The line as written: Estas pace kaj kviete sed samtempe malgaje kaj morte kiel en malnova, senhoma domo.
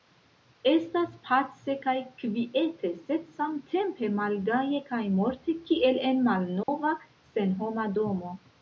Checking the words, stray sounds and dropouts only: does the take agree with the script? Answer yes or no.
no